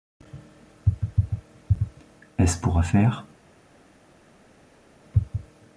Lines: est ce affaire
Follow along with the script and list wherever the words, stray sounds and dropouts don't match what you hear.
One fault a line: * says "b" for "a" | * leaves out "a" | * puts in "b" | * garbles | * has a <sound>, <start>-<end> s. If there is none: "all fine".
* puts in "pour"